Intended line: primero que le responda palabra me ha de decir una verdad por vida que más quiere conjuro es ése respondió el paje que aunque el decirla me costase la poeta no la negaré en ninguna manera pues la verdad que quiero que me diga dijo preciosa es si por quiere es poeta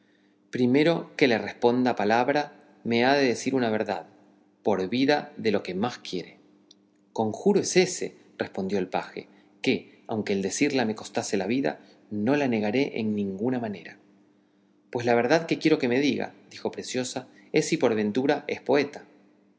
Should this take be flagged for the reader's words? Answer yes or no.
yes